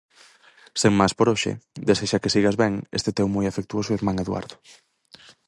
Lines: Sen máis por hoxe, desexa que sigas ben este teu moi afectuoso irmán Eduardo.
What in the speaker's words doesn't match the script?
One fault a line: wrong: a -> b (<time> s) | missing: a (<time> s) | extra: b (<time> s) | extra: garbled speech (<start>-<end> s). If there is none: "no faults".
no faults